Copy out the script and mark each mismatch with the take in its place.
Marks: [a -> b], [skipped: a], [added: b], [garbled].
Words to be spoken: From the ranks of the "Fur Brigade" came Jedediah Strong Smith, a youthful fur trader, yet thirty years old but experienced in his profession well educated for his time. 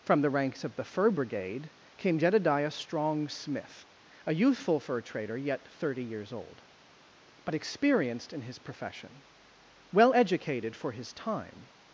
From the ranks of the "Fur Brigade" came Jedediah Strong Smith, a youthful fur trader, yet thirty years old but experienced in his profession well educated for his time.